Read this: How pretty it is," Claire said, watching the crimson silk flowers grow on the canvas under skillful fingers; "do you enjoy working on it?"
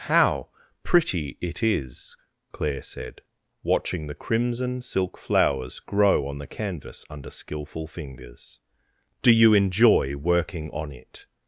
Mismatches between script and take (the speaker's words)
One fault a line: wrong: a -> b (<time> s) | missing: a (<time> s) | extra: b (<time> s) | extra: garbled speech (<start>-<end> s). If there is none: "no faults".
no faults